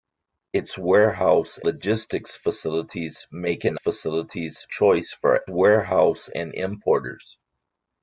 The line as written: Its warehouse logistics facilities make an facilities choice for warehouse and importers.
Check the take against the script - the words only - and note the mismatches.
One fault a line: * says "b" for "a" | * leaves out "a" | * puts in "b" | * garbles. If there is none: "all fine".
all fine